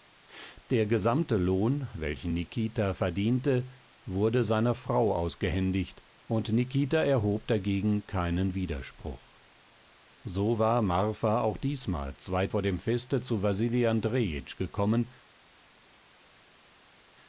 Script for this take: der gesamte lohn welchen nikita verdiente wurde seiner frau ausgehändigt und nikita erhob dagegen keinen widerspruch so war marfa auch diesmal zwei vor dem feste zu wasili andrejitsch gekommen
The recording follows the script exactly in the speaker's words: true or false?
true